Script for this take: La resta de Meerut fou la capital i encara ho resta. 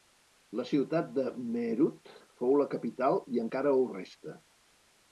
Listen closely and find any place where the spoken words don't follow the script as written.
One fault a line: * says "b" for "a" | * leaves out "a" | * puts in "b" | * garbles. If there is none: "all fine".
* says "ciutat" for "resta"